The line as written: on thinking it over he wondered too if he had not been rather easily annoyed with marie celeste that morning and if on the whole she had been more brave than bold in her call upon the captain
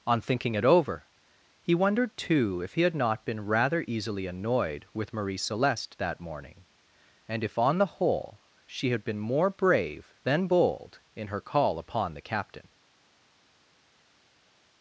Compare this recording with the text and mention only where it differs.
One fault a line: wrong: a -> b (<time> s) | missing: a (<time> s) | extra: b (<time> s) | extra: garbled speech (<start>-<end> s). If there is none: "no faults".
no faults